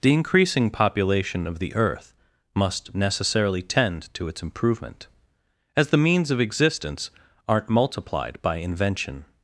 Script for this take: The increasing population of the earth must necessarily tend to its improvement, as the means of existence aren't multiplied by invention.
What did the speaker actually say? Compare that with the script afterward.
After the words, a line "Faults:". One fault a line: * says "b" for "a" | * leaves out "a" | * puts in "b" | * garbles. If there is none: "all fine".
The increasing population of the earth must necessarily tend to its improvement, as the means of existence aren't multiplied by invention.
Faults:
all fine